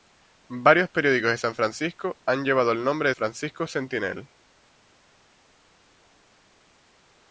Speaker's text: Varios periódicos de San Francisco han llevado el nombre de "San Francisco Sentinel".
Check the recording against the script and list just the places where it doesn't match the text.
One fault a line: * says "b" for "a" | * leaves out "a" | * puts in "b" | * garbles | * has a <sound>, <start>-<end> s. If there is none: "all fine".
* leaves out "San"